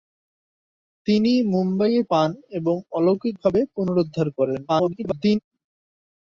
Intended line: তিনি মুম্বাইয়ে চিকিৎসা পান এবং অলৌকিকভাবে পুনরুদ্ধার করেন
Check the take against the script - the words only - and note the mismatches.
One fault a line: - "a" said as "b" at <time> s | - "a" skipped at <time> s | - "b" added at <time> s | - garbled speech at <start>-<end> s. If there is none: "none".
- "চিকিৎসা" skipped at 2.0 s
- garbled speech at 4.7-5.4 s